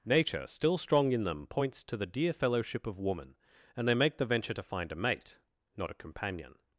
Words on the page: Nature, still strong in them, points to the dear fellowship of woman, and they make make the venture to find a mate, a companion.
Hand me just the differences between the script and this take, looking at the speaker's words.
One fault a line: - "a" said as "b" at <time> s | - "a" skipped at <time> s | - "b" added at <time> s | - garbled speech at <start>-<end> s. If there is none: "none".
- "make" skipped at 4.2 s
- "not" added at 5.8 s